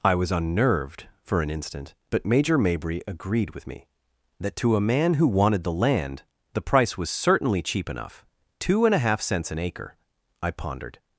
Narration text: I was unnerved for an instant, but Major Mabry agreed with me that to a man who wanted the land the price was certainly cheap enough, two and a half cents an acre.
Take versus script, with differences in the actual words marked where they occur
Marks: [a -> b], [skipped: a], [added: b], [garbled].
I was unnerved for an instant, but Major Mabry agreed with me that to a man who wanted the land the price was certainly cheap enough, two and a half cents an acre. [added: I pondered]